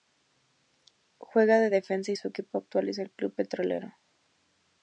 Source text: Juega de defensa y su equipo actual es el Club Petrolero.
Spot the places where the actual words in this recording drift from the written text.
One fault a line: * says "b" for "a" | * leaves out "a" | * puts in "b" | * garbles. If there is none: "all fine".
all fine